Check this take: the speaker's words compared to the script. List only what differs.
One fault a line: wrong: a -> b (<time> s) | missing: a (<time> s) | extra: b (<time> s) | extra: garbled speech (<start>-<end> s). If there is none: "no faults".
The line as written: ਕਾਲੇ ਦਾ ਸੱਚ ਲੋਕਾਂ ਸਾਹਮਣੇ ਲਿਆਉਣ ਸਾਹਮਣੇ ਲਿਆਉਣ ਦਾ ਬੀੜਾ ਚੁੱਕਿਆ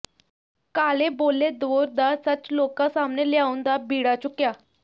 extra: ਬੋਲੇ ਦੌਰ (1.1 s)
missing: ਸਾਹਮਣੇ ਲਿਆਉਣ (3.6 s)